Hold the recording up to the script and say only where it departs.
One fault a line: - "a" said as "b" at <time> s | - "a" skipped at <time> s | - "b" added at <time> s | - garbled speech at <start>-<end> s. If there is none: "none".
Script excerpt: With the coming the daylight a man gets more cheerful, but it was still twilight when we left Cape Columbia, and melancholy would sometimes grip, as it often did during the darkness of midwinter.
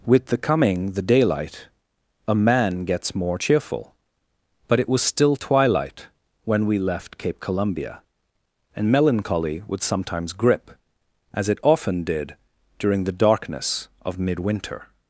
none